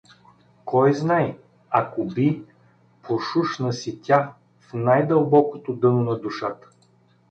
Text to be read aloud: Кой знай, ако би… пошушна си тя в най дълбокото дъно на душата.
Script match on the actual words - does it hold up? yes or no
yes